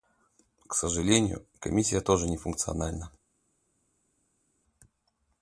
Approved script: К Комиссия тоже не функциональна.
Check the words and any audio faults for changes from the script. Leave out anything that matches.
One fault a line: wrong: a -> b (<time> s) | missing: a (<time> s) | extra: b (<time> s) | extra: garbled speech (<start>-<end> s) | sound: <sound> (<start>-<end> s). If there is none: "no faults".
extra: сожалению (0.7 s)